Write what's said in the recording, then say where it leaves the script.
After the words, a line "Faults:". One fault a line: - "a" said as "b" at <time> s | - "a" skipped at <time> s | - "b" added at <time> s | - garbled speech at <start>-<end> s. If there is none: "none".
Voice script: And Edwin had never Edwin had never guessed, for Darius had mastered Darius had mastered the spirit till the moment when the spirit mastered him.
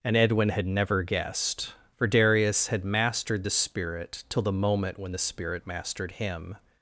And Edwin had never guessed, for Darius had mastered the spirit till the moment when the spirit mastered him.
Faults:
- "Edwin had never" skipped at 1.0 s
- "Darius had mastered" skipped at 3.5 s